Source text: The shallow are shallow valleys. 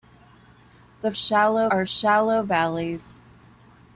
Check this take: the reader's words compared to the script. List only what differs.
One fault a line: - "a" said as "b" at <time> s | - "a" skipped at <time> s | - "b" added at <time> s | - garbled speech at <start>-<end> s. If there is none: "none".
none